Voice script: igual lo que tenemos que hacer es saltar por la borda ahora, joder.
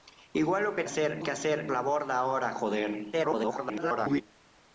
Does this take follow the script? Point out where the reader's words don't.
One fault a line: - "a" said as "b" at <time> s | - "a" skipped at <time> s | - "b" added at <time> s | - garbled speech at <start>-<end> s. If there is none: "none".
- "tenemos" said as "hacer" at 0.8 s
- "es saltar por" skipped at 1.7 s
- garbled speech at 3.1-4.2 s